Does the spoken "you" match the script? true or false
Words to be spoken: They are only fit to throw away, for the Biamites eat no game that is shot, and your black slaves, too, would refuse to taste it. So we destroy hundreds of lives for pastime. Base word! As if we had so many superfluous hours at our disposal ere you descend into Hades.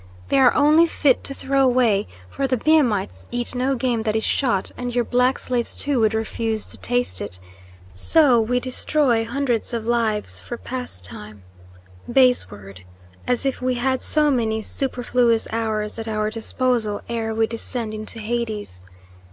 false